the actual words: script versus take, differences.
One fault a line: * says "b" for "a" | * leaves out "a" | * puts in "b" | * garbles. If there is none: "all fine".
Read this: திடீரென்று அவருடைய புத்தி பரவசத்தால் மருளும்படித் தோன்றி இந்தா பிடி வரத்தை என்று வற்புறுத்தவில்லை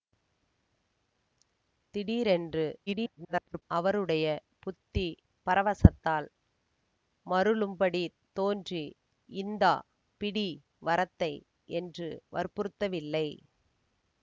* garbles